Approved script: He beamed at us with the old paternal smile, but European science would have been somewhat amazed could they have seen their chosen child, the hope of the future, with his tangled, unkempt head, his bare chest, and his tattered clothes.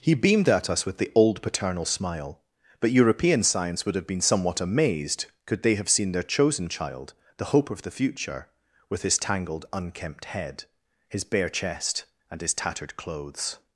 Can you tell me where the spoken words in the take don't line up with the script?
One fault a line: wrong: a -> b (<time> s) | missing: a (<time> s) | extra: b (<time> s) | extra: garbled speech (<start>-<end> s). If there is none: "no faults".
no faults